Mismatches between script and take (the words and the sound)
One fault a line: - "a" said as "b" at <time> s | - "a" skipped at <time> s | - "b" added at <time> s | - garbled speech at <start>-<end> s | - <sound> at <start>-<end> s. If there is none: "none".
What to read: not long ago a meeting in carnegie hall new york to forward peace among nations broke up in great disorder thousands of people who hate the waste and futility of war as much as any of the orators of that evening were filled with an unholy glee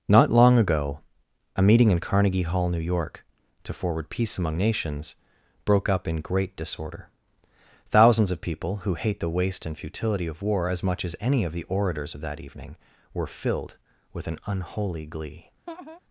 - laugh at 15.7-16.0 s